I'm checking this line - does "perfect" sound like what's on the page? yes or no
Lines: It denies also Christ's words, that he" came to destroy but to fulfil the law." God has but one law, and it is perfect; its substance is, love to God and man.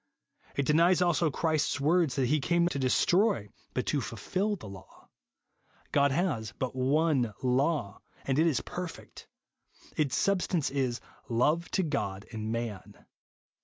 yes